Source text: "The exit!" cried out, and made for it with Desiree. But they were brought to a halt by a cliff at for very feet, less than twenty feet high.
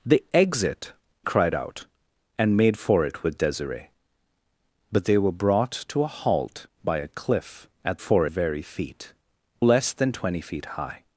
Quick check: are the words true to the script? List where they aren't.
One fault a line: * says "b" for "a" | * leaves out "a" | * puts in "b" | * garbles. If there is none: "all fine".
all fine